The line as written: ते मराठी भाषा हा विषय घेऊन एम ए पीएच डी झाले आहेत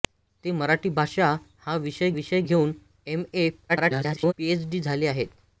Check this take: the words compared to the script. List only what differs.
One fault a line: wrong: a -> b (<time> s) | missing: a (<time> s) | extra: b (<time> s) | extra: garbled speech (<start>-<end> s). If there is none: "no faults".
extra: विषय (2.1 s)
extra: garbled speech (3.7-4.3 s)